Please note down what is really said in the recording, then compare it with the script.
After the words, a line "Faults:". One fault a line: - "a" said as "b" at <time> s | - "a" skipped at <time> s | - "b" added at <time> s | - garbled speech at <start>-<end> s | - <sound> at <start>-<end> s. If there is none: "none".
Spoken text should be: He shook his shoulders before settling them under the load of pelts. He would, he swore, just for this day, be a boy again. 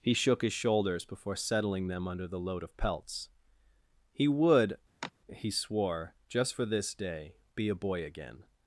He shook his shoulders before settling them under the load of pelts. He would, he swore, just for this day, be a boy again.
Faults:
- sigh at 5.0-5.1 s